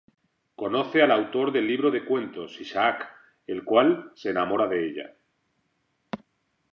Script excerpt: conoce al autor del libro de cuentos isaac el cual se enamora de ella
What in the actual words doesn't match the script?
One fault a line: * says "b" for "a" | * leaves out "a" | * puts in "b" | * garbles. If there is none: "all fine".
all fine